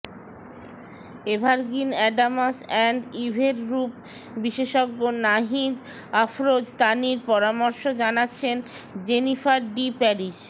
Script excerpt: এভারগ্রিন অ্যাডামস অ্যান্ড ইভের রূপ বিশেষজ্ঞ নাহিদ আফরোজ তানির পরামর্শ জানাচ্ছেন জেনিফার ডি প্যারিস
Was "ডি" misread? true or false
false